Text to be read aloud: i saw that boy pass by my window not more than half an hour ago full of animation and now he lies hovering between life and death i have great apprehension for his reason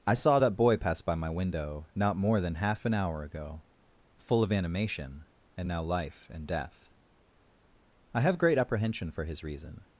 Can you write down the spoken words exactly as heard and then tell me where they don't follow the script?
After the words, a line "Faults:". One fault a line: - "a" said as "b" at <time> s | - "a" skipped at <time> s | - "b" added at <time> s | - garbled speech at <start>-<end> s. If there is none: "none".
i saw that boy pass by my window not more than half an hour ago full of animation and now life and death i have great apprehension for his reason
Faults:
- "he lies hovering between" skipped at 5.8 s